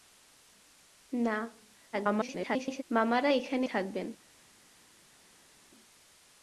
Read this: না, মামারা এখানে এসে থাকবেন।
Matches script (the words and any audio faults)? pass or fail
fail